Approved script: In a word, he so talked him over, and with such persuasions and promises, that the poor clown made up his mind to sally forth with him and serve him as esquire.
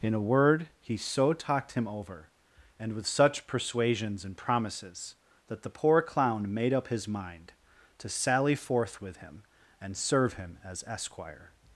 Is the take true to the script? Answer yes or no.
yes